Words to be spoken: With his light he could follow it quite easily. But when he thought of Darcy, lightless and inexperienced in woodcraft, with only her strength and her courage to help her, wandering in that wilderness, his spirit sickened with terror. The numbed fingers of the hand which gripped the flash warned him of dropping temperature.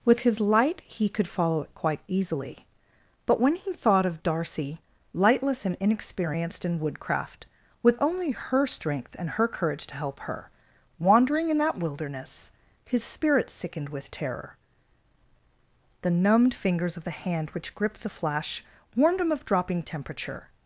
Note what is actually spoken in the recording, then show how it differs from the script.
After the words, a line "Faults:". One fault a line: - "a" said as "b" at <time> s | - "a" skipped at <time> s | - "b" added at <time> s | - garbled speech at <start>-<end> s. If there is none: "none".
With his light he could follow it quite easily. But when he thought of Darcy, lightless and inexperienced in woodcraft, with only her strength and her courage to help her, wandering in that wilderness, his spirit sickened with terror. The numbed fingers of the hand which gripped the flash warned him of dropping temperature.
Faults:
none